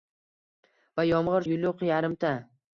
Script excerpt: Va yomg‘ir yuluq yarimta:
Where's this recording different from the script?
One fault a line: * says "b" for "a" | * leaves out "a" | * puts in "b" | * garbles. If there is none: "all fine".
all fine